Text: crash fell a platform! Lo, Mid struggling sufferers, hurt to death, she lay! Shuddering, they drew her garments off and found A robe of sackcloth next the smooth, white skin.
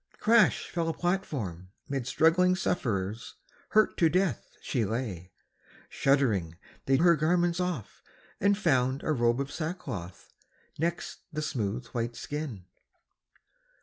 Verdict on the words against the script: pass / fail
fail